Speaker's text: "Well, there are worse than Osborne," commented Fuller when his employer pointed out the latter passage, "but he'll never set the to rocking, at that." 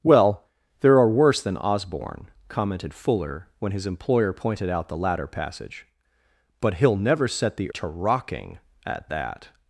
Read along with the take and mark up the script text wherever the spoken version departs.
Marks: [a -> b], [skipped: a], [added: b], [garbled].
"Well, there are worse than Osborne," commented Fuller when his employer pointed out the latter passage, "but he'll never set the to rocking, at that."